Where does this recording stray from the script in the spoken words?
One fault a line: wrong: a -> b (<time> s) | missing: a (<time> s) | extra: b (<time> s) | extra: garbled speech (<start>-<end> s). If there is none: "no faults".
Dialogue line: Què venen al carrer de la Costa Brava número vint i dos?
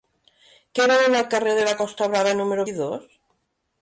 missing: vint (2.7 s)